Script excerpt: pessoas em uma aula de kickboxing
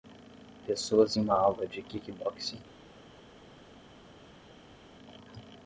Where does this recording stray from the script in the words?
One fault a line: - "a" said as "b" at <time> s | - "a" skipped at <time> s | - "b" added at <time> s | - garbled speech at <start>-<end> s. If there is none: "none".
none